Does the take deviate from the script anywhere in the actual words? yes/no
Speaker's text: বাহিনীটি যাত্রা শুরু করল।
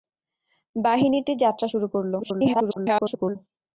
yes